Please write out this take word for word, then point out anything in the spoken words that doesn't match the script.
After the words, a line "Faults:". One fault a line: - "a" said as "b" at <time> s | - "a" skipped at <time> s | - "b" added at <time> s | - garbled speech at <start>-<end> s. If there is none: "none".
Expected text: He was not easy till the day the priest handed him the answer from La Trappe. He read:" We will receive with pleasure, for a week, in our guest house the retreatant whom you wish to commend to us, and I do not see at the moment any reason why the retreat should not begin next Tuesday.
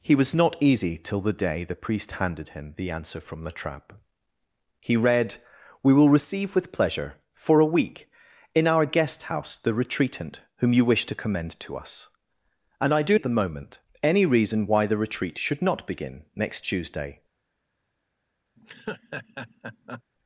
He was not easy till the day the priest handed him the answer from La Trappe. He read:" We will receive with pleasure, for a week, in our guest house the retreatant whom you wish to commend to us, and I do at the moment any reason why the retreat should not begin next Tuesday.
Faults:
- "not see" skipped at 13.2 s